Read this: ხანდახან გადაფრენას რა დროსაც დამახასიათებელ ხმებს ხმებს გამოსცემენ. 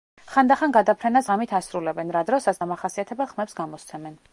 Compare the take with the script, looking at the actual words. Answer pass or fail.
fail